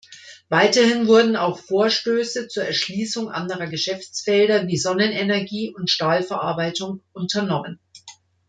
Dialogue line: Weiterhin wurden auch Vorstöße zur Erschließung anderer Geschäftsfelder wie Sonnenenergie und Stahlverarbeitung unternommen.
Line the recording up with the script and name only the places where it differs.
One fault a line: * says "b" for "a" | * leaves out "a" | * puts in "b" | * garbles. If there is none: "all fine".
all fine